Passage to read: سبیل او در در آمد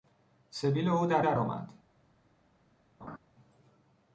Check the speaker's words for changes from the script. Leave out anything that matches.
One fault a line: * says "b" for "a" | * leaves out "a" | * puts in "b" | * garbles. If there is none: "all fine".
all fine